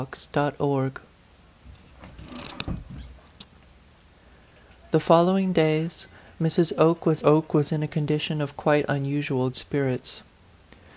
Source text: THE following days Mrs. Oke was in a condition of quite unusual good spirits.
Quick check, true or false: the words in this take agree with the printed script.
false